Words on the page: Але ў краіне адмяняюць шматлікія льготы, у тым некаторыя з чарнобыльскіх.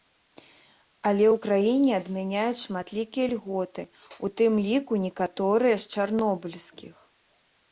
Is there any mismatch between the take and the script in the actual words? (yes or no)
yes